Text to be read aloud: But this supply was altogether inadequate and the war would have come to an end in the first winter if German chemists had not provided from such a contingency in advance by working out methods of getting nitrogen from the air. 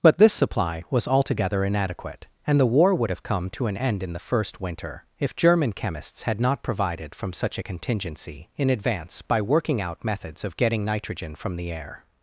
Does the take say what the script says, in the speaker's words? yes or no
yes